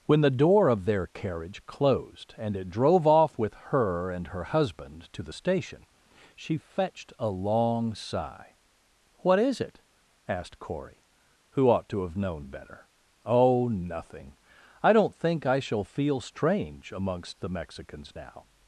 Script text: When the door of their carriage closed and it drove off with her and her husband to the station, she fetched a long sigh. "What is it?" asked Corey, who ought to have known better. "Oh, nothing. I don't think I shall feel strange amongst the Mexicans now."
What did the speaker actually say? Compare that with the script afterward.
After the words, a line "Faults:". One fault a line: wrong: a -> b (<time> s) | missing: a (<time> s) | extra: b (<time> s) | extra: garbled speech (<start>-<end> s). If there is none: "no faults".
When the door of their carriage closed and it drove off with her and her husband to the station, she fetched a long sigh. "What is it?" asked Corey, who ought to have known better. "Oh, nothing. I don't think I shall feel strange amongst the Mexicans now."
Faults:
no faults